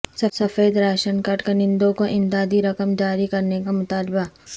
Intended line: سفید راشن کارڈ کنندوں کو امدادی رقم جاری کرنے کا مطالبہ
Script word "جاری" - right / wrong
right